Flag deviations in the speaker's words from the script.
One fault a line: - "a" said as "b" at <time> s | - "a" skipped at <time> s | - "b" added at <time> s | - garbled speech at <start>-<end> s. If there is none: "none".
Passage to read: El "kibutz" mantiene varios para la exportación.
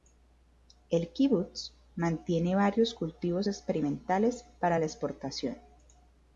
- "cultivos experimentales" added at 2.9 s